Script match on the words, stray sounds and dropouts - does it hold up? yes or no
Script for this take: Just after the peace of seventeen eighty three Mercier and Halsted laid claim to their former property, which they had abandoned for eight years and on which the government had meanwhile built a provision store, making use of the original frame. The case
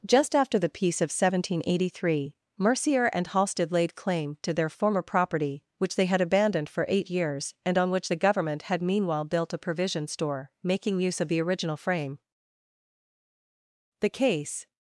yes